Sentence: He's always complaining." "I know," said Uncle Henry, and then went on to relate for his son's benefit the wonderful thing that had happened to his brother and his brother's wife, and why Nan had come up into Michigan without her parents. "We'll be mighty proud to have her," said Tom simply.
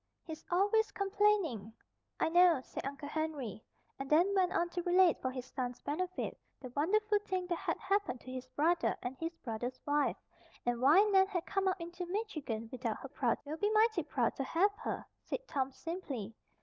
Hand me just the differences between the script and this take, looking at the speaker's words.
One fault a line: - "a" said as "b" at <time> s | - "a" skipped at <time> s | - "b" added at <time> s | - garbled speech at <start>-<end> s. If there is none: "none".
- "parents" said as "proud" at 13.1 s